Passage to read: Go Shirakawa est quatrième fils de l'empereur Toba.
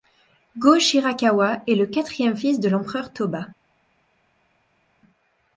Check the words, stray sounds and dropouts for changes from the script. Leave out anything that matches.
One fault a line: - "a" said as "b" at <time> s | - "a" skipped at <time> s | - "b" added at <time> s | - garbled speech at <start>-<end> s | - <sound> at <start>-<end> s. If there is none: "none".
- "le" added at 1.8 s